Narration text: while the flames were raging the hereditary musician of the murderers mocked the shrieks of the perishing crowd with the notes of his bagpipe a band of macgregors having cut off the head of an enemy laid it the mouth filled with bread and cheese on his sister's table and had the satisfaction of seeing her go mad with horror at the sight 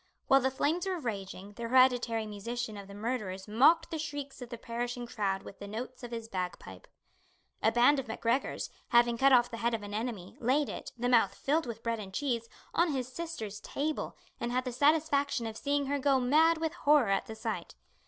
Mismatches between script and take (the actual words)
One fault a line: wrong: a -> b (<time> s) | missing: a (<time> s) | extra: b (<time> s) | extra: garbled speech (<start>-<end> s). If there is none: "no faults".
no faults